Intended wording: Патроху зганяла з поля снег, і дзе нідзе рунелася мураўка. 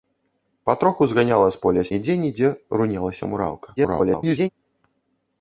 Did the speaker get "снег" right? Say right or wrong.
wrong